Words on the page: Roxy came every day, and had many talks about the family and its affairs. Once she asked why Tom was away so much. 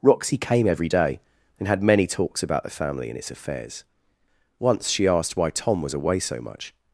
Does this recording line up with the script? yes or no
yes